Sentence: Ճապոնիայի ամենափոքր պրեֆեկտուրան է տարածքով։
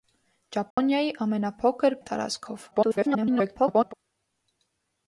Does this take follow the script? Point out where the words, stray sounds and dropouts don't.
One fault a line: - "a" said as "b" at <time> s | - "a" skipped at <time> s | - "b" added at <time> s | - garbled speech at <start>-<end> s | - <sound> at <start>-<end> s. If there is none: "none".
- dropout at 0.7-0.8 s
- "պրեֆեկտուրան" skipped at 1.9 s
- garbled speech at 2.7-3.9 s